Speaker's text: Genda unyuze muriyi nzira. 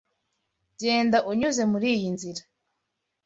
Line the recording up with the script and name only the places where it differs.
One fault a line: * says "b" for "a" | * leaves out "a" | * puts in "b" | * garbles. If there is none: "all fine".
all fine